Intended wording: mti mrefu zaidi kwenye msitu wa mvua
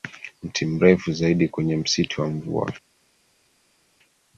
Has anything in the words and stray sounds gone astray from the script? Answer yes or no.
no